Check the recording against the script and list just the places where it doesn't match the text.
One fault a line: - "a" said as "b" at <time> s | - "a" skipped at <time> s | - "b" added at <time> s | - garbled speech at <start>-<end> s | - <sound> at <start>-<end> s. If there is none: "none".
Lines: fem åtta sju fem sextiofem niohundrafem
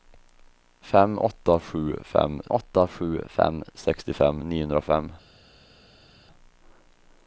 - "åtta sju fem" added at 2.5 s